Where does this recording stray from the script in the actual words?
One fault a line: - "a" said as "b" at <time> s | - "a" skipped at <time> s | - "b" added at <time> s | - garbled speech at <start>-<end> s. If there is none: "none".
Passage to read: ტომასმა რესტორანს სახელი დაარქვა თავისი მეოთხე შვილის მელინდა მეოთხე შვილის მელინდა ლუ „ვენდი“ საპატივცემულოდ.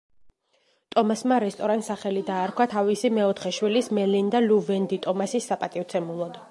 - "მეოთხე შვილის მელინდა" skipped at 4.5 s
- "ტომასის" added at 5.1 s